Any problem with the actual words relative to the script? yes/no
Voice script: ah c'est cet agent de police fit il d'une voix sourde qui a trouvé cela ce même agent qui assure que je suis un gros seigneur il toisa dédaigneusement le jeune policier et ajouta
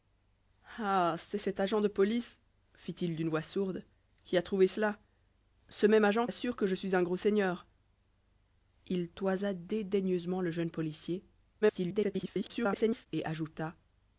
yes